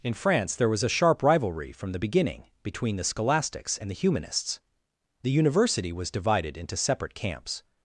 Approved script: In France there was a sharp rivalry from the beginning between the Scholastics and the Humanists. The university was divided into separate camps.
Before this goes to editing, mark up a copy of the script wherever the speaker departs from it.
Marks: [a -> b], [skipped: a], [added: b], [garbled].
In France there was a sharp rivalry from the beginning between the Scholastics and the Humanists. The university was divided into separate camps.